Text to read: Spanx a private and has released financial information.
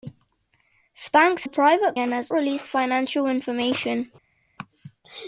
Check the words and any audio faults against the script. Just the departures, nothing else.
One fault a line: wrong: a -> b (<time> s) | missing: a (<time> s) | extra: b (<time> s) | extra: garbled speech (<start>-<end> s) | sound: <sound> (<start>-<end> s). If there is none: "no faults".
no faults